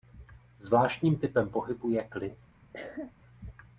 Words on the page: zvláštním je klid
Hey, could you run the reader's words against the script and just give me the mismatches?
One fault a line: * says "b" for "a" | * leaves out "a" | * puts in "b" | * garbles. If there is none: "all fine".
* puts in "typem pohybu"